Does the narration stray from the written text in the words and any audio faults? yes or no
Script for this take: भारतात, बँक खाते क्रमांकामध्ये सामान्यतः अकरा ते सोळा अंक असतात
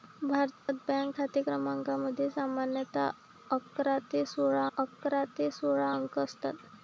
yes